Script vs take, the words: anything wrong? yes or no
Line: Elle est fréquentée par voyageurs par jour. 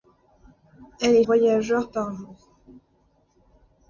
yes